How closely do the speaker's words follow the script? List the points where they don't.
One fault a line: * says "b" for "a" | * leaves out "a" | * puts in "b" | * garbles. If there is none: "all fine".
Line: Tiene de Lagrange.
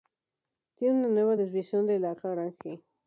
* puts in "una nueva desviación"